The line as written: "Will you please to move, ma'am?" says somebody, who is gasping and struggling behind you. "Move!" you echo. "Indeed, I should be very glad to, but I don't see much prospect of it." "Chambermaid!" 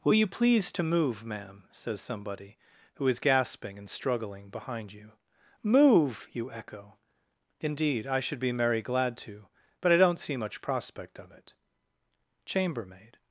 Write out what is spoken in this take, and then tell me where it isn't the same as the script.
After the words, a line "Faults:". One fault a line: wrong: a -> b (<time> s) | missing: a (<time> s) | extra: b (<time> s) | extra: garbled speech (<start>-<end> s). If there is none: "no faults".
"Will you please to move, ma'am?" says somebody, who is gasping and struggling behind you. "Move!" you echo. "Indeed, I should be merry glad to, but I don't see much prospect of it." "Chambermaid!"
Faults:
wrong: very -> merry (8.5 s)